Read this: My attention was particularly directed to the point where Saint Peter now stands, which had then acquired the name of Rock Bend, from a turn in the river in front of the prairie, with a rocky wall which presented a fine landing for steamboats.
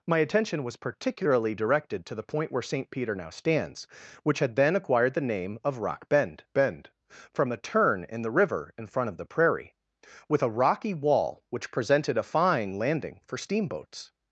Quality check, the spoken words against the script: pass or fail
fail